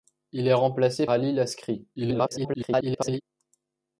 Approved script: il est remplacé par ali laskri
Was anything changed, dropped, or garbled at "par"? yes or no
yes